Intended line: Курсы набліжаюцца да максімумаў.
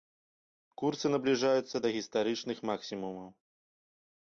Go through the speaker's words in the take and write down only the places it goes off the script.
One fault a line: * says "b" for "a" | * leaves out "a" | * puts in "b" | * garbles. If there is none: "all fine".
* puts in "гістарычных"